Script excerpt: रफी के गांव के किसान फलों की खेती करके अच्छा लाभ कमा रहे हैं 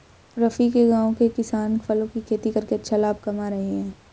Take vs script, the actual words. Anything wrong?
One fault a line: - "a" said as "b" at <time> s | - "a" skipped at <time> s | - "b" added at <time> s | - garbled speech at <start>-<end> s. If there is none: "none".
none